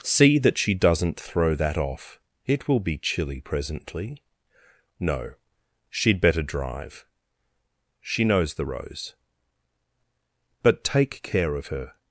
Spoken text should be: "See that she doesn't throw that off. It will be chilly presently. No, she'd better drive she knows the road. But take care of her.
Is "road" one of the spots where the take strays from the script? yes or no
yes